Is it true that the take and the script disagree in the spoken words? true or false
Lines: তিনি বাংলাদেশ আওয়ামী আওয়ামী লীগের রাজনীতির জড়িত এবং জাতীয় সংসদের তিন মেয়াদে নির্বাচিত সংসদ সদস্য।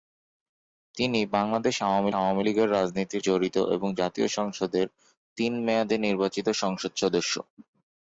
false